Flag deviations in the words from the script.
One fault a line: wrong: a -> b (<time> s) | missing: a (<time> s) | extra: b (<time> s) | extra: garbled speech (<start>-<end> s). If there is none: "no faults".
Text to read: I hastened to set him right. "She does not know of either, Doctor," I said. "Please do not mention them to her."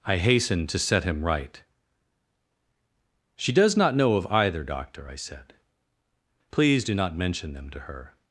no faults